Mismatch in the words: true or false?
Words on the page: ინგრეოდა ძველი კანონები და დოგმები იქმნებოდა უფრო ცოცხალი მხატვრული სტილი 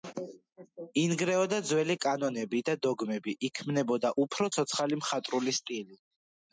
false